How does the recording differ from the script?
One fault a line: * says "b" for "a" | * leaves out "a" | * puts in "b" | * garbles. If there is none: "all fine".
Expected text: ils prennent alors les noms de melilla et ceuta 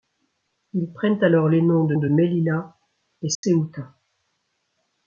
* puts in "de"